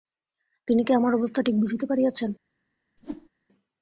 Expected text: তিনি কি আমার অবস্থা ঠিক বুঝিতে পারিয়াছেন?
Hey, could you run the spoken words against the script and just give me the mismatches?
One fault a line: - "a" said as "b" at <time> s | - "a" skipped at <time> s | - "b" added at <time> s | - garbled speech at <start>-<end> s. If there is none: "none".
none